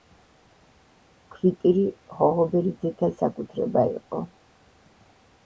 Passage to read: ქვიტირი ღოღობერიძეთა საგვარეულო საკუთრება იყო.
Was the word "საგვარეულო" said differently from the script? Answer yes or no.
yes